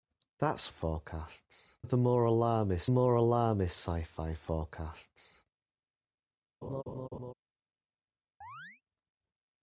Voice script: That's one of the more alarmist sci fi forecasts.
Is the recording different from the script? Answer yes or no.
yes